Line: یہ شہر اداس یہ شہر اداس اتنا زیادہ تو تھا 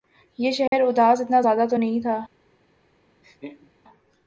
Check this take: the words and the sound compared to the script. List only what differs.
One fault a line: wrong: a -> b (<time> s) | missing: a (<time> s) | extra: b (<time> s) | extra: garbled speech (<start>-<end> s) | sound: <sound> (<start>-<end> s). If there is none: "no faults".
sound: dropout (0.7-0.7 s)
missing: یہ شہر اداس (1.2 s)
extra: نہیں (1.7 s)
sound: laugh (3.2-3.7 s)